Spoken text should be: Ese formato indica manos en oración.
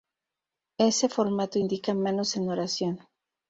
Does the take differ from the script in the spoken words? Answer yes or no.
no